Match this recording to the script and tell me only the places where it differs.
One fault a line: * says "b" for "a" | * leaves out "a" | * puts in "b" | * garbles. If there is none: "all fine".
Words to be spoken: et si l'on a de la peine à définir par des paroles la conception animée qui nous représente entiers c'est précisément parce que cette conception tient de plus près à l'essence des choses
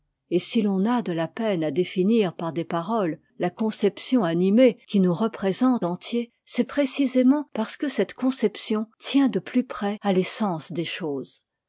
all fine